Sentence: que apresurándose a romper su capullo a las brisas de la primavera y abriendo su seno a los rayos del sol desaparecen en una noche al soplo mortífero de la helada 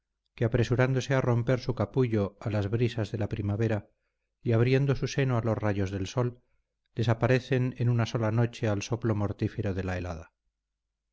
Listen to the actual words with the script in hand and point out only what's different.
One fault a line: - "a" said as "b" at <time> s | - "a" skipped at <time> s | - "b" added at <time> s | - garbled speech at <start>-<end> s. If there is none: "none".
- "sola" added at 8.1 s